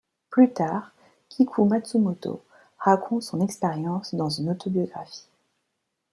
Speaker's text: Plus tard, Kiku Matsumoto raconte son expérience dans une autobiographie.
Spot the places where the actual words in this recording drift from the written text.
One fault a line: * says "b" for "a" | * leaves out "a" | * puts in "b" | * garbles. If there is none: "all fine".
all fine